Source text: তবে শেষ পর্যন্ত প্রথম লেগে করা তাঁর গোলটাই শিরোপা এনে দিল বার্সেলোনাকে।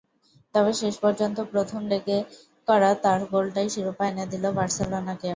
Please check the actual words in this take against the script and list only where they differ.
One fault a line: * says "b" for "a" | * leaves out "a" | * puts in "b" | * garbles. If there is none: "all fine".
all fine